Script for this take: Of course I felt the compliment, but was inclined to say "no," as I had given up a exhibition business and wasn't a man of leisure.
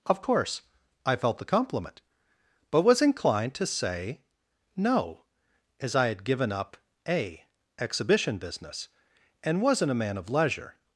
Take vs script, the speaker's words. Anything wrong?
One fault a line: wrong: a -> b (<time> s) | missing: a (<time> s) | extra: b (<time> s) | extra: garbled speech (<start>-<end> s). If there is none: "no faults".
no faults